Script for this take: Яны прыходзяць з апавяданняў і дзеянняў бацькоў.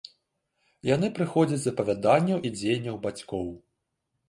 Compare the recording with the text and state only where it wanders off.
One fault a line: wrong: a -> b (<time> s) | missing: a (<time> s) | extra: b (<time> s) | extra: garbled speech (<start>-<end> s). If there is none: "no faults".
no faults